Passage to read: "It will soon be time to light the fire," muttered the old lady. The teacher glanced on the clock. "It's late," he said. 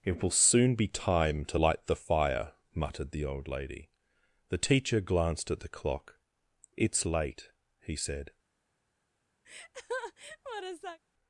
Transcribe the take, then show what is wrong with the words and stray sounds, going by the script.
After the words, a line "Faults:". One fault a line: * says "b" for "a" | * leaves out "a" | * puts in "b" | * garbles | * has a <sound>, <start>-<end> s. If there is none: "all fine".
"It will soon be time to light the fire," muttered the old lady. The teacher glanced at the clock. "It's late," he said.
Faults:
* says "at" for "on"
* has a laugh, 9.4-11.0 s